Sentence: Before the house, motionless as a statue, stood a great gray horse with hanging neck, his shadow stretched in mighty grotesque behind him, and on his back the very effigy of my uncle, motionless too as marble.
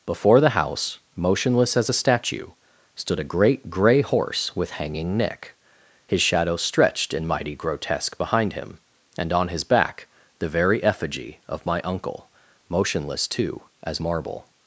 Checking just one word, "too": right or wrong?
right